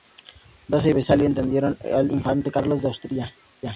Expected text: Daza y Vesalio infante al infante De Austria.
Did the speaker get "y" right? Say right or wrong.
right